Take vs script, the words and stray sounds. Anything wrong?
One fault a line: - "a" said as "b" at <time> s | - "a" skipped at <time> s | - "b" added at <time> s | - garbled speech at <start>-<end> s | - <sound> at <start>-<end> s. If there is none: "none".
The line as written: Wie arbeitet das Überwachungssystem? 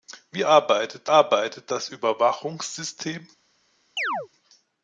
- "arbeitet" added at 1.1 s
- chirp at 4.0-4.3 s